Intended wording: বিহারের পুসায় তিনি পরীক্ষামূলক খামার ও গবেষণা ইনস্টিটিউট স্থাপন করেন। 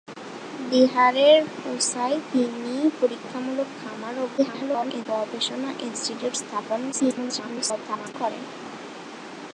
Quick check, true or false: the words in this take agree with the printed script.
false